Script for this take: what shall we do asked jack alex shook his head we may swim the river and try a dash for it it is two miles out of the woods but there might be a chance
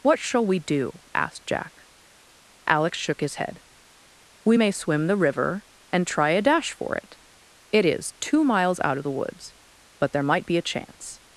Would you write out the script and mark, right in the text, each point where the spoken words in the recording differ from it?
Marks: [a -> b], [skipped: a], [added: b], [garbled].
what shall we do asked jack alex shook his head we may swim the river and try a dash for it it is two miles out of the woods but there might be a chance